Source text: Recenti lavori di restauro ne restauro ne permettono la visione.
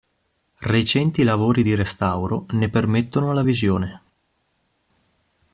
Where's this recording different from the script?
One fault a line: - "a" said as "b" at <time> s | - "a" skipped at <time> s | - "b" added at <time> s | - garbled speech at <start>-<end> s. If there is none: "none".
- "restauro ne" skipped at 2.7 s